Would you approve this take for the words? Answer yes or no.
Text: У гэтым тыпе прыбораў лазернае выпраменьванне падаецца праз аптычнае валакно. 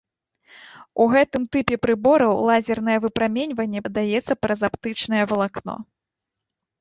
yes